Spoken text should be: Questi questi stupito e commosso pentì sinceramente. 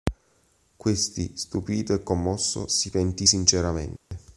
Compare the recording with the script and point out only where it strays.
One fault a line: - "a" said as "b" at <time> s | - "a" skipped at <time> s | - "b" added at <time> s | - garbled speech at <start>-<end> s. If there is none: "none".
- "questi" skipped at 1.3 s
- "si" added at 2.7 s